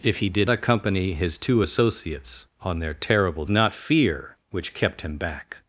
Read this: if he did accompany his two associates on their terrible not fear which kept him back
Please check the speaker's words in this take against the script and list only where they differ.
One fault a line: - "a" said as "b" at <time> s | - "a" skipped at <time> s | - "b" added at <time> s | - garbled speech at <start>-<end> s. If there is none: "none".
none